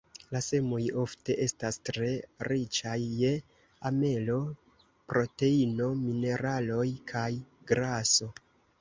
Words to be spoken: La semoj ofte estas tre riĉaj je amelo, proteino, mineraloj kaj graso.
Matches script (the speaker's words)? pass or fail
pass